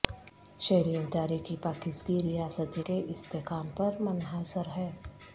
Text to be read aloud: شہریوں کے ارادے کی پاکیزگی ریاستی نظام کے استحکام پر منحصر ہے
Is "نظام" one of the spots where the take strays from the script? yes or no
yes